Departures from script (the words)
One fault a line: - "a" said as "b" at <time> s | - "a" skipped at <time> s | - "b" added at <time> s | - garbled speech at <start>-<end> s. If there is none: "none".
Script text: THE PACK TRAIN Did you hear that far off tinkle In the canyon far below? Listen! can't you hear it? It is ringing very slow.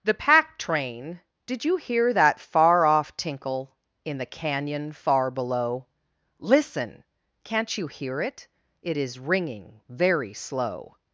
none